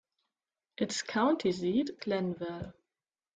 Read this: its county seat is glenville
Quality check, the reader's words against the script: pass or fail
fail